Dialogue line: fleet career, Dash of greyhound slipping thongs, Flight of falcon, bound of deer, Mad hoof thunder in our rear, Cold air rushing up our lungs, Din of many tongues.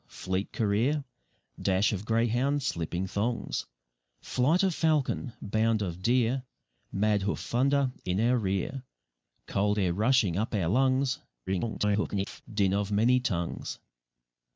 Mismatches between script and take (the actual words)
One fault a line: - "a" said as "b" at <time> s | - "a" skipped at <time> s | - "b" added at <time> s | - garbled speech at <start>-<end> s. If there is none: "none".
- garbled speech at 11.5-12.4 s